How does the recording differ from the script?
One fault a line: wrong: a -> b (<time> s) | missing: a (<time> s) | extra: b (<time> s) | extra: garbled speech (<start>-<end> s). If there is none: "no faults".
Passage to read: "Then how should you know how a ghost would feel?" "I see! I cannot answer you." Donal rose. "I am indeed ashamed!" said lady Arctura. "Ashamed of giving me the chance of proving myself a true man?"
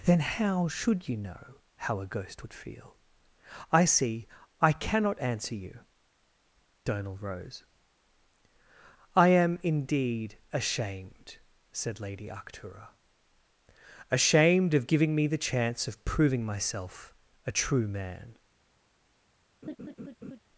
no faults